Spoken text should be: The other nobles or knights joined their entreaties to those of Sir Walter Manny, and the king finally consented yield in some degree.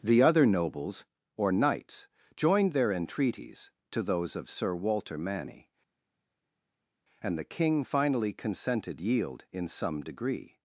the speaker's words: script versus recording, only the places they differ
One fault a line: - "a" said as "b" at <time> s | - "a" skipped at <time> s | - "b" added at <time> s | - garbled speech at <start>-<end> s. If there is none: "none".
none